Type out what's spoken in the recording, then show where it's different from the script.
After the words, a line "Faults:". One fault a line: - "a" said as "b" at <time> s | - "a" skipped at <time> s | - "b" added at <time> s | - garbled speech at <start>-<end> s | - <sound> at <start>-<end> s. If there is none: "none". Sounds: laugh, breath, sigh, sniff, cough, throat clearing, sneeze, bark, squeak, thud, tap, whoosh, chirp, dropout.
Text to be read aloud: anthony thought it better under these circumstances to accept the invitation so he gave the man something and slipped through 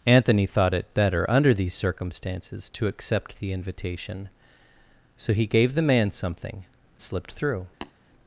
anthony thought it better under these circumstances to accept the invitation so he gave the man something slipped through
Faults:
- "and" skipped at 6.6 s
- tap at 7.8-7.9 s